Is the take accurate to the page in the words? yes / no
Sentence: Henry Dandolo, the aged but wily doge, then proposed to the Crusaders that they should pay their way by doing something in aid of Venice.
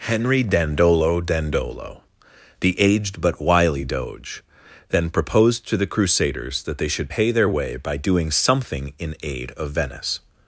no